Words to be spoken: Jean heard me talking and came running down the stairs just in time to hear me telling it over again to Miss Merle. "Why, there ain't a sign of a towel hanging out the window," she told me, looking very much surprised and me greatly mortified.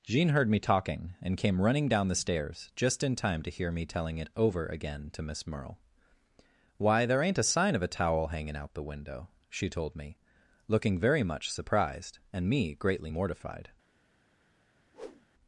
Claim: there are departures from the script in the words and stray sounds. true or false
true